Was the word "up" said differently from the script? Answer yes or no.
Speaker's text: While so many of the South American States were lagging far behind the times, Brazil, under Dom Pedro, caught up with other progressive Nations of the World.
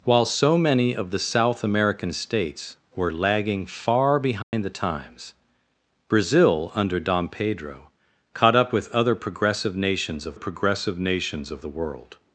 no